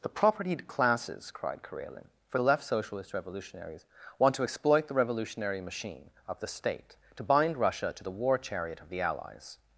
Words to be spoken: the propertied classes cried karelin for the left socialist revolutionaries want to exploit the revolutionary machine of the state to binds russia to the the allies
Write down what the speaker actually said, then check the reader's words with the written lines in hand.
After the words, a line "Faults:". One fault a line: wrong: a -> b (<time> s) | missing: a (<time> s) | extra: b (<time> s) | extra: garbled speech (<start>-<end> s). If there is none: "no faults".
the propertied classes cried karelin for the left socialist revolutionaries want to exploit the revolutionary machine of the state to bind russia to the war chariot of the allies
Faults:
wrong: binds -> bind (7.2 s)
extra: war chariot of (8.1 s)